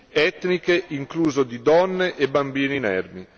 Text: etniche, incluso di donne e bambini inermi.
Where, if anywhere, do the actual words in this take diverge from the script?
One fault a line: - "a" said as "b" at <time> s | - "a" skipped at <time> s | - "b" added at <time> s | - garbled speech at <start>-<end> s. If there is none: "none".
none